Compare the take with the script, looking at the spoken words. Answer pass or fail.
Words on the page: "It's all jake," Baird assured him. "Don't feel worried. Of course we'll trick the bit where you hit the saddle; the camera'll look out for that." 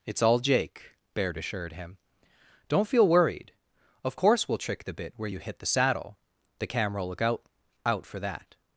fail